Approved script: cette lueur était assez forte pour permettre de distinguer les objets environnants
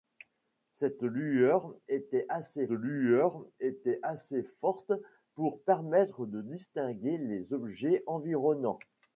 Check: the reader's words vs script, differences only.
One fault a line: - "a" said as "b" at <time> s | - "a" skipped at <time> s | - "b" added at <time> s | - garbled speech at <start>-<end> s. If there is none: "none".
- "lueur était assez" added at 2.7 s